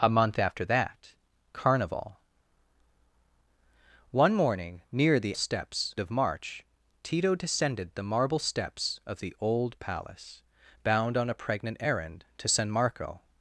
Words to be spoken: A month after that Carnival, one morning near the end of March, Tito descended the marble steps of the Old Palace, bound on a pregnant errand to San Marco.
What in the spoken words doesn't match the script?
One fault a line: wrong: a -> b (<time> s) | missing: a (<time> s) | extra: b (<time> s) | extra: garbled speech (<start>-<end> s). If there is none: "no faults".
wrong: end -> steps (5.3 s)